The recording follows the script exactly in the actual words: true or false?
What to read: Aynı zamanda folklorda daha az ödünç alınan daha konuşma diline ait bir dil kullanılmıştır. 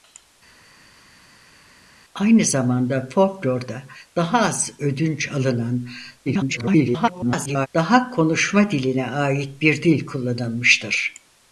false